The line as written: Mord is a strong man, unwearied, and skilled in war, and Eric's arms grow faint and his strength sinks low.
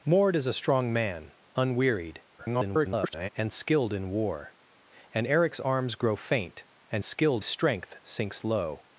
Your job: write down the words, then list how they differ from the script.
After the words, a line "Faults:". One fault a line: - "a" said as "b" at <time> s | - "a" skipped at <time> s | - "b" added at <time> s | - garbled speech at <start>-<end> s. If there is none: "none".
Mord is a strong man, unwearied, [garbled] and skilled in war, and Eric's arms grow faint and skilled strength sinks low.
Faults:
- garbled speech at 2.4-3.3 s
- "his" said as "skilled" at 7.0 s